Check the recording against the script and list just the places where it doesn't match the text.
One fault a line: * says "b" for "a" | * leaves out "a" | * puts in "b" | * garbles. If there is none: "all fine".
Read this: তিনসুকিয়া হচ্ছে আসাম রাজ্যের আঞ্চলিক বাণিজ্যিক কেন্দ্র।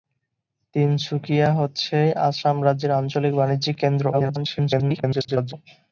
* garbles